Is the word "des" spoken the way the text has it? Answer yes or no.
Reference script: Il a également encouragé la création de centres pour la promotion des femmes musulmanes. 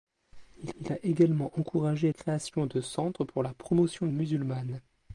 no